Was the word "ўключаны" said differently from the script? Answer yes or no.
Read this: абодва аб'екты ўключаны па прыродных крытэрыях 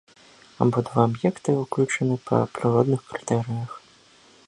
no